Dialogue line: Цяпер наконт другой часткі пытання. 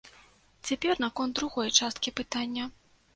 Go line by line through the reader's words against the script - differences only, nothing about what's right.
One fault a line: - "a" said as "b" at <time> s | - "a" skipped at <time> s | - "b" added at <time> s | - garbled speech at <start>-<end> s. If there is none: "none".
none